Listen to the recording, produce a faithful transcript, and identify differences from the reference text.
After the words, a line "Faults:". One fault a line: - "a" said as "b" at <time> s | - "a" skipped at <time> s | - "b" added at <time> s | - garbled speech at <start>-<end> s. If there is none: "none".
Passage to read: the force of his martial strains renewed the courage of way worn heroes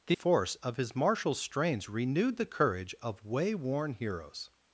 the force of his martial strains renewed the courage of way worn heroes
Faults:
none